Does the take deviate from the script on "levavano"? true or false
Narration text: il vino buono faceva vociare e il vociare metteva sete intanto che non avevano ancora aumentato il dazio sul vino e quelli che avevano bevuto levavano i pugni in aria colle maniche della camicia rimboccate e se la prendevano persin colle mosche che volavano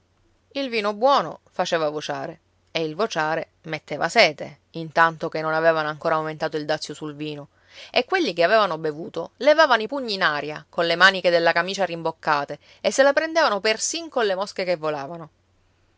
false